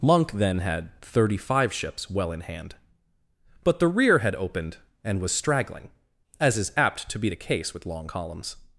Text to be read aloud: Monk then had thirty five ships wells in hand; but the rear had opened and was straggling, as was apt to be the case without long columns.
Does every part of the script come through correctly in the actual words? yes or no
no